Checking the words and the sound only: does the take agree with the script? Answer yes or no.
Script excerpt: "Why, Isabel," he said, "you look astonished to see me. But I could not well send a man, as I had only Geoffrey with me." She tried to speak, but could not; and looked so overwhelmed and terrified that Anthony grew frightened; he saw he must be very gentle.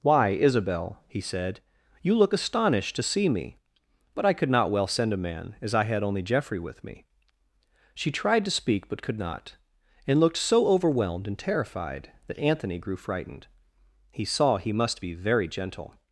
yes